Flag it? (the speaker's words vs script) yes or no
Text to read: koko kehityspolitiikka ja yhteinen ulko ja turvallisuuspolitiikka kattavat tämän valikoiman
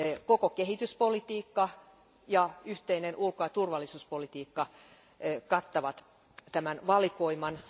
no